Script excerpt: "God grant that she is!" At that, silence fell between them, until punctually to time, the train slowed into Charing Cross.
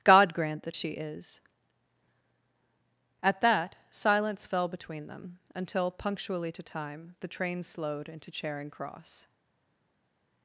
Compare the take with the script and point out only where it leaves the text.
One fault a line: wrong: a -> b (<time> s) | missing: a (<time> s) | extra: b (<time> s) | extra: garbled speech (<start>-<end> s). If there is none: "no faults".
no faults